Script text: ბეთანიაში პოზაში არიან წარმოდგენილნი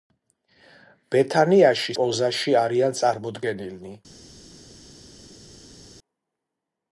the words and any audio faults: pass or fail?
pass